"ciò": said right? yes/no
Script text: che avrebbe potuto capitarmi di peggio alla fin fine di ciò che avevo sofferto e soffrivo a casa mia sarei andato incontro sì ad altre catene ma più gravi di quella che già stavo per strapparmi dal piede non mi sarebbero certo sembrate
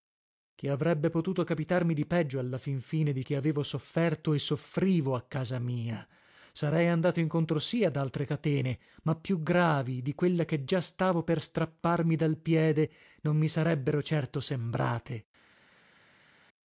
no